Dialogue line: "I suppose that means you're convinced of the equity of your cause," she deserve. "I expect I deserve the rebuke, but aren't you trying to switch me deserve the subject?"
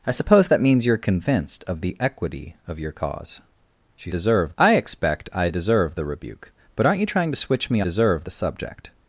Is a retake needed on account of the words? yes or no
no